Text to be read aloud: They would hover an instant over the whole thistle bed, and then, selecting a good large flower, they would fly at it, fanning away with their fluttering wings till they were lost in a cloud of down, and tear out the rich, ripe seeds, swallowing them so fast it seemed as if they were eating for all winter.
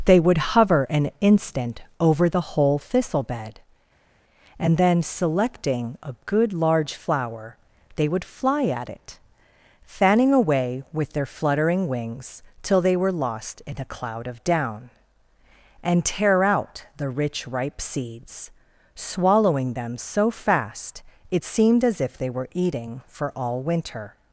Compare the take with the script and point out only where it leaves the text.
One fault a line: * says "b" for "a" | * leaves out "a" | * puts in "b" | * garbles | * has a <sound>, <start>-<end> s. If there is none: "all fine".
all fine